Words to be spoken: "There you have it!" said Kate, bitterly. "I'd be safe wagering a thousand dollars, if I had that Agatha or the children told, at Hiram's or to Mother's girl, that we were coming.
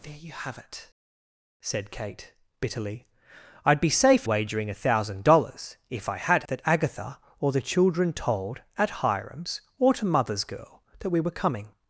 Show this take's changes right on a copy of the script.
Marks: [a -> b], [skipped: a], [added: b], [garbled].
"There you have it!" said Kate, bitterly. "I'd be safe wagering a thousand dollars, if I had that Agatha or the children told, at Hiram's or to Mother's girl, that we were coming.